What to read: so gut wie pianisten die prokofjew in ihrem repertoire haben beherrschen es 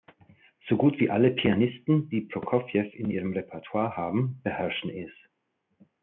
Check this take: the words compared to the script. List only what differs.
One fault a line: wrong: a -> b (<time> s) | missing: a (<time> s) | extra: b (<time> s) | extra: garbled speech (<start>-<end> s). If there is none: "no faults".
extra: alle (1.1 s)